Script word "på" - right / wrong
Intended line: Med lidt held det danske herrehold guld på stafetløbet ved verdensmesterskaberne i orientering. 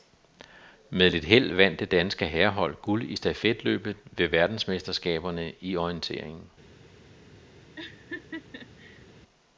wrong